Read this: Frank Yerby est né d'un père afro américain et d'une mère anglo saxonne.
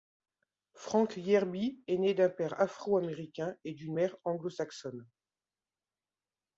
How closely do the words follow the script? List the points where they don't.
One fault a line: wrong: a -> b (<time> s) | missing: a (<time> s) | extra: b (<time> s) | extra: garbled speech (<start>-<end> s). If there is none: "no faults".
no faults